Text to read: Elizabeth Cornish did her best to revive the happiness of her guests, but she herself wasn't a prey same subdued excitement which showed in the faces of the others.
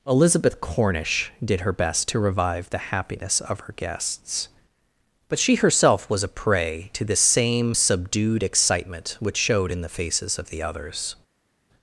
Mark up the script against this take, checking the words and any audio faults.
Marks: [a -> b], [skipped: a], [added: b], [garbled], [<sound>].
Elizabeth Cornish did her best to revive the happiness of her guests, but she herself [wasn't -> was] a prey [added: to the] same subdued excitement which showed in the faces of the others.